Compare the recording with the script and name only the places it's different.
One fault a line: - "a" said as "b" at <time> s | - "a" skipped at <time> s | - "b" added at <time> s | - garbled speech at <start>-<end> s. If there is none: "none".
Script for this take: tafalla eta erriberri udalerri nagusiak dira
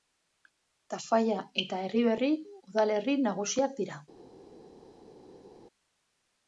none